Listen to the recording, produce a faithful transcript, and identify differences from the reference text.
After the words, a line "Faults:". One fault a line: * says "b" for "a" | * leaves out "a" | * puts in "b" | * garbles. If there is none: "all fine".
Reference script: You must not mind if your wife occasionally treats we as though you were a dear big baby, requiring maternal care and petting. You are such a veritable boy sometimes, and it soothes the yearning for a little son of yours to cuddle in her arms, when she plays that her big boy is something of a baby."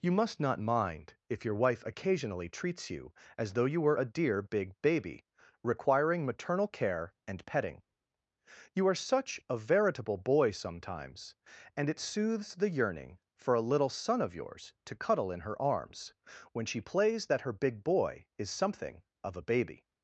You must not mind if your wife occasionally treats you as though you were a dear big baby, requiring maternal care and petting. You are such a veritable boy sometimes, and it soothes the yearning for a little son of yours to cuddle in her arms, when she plays that her big boy is something of a baby."
Faults:
* says "you" for "we"